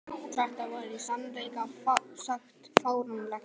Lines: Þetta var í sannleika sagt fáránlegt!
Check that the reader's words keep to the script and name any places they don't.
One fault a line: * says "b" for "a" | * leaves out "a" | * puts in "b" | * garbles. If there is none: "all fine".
all fine